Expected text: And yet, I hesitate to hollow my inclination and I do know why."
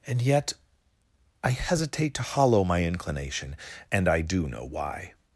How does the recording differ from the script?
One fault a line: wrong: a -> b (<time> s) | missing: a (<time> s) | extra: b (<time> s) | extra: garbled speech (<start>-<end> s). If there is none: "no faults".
no faults